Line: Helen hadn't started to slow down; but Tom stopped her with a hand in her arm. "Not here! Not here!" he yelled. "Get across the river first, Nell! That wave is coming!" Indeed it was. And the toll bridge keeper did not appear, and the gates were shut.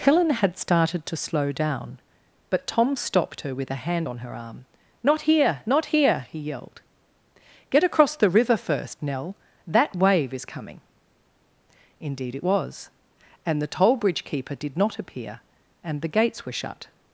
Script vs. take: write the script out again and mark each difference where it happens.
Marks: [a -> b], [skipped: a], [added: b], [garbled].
Helen [hadn't -> had] started to slow down; but Tom stopped her with a hand [in -> on] her arm. "Not here! Not here!" he yelled. "Get across the river first, Nell! That wave is coming!" Indeed it was. And the toll bridge keeper did not appear, and the gates were shut.